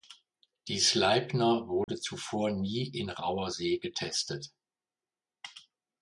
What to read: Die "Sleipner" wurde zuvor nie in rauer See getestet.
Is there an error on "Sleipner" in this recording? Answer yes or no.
no